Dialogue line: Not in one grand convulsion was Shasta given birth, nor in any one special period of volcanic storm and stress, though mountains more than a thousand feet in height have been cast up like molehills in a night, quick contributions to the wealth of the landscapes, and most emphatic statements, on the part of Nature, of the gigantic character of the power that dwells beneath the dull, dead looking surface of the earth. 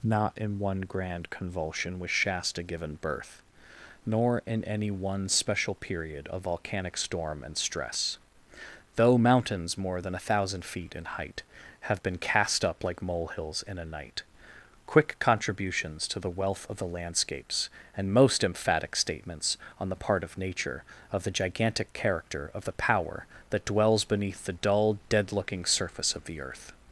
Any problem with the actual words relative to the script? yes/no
no